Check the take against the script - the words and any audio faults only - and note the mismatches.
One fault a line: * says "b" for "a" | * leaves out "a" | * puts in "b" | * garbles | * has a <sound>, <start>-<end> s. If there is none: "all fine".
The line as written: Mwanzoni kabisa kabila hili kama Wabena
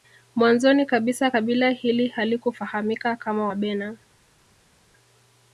* puts in "halikufahamika"